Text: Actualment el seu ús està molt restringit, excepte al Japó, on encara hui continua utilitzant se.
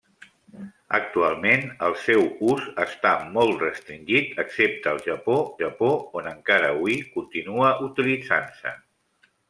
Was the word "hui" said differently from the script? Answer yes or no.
no